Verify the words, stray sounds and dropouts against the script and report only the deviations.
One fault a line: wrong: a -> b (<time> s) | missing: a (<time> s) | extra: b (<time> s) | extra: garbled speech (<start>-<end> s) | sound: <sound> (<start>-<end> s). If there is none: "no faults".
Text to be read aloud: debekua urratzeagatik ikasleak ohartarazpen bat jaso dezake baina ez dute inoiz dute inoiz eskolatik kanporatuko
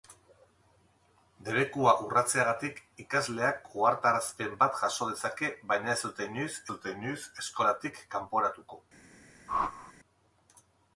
sound: whoosh (9.5-9.9 s)